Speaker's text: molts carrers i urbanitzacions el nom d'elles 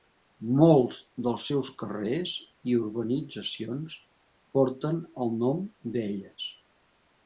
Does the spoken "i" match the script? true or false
true